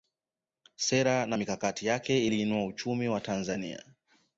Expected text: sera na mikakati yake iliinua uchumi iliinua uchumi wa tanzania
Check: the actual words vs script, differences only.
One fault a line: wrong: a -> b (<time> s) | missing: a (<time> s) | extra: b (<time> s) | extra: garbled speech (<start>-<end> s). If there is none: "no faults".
missing: iliinua uchumi (3.1 s)